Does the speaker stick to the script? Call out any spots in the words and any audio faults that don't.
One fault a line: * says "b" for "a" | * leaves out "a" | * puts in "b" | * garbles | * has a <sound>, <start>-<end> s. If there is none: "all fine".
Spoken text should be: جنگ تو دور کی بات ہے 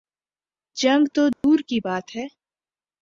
* has a dropout, 1.3-1.4 s